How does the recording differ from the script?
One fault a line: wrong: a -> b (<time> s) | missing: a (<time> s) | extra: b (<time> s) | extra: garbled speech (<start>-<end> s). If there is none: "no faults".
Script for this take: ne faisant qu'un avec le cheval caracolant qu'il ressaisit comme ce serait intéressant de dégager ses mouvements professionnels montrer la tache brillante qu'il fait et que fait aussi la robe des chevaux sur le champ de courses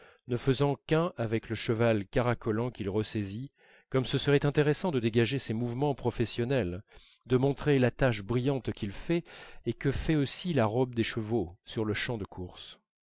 extra: de (7.3 s)